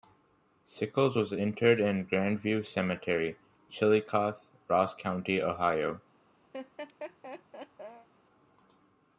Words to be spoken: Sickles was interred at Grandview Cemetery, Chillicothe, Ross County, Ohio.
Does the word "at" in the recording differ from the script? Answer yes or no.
yes